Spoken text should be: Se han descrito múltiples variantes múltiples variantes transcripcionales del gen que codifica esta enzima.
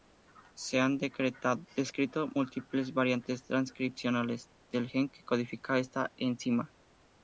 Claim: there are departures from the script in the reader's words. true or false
true